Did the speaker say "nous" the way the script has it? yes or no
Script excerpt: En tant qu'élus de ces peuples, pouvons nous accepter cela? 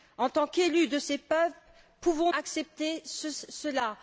no